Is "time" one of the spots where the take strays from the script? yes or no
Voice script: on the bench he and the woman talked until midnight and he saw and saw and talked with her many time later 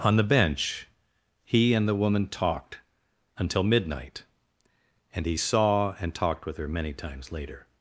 yes